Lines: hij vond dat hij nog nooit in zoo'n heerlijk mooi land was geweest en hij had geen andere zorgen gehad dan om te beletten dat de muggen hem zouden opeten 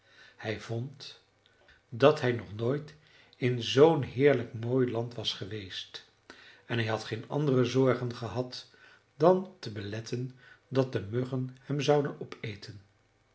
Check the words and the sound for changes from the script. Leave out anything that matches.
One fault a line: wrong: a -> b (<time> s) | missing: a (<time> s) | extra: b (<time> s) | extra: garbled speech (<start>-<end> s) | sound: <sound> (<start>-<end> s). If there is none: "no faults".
missing: om (9.6 s)